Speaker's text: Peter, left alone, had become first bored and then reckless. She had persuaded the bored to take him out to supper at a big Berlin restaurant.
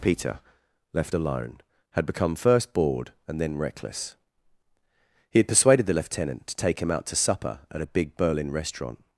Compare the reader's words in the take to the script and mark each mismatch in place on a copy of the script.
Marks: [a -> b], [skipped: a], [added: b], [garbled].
Peter, left alone, had become first bored and then reckless. [She -> He] had persuaded the [bored -> lieutenant] to take him out to supper at a big Berlin restaurant.